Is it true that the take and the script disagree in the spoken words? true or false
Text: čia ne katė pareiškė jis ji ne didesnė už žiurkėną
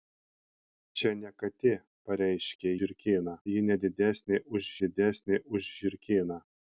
true